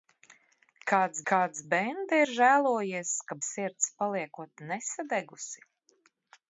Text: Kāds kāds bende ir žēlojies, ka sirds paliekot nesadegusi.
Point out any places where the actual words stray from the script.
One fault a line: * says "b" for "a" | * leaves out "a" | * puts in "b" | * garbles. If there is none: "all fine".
all fine